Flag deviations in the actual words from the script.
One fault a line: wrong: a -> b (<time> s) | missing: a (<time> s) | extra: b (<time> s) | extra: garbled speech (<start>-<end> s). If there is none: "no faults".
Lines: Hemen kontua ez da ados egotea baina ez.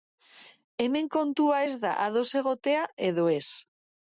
wrong: baina -> edo (3.1 s)